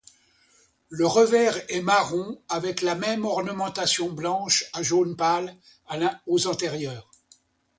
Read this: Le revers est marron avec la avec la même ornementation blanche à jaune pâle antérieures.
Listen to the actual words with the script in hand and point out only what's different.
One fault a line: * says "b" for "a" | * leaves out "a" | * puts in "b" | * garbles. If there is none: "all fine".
* leaves out "avec la"
* puts in "aux"